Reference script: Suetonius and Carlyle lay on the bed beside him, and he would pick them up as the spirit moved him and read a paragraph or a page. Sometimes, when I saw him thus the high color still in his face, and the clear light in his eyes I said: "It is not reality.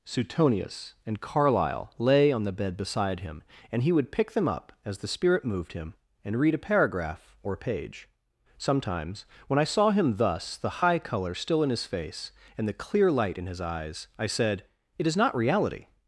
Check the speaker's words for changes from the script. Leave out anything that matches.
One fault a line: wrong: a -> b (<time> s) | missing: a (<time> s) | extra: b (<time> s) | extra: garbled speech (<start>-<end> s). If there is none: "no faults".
no faults